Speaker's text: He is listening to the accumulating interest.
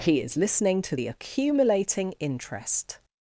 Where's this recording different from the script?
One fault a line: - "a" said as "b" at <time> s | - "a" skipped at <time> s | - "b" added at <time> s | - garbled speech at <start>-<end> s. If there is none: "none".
none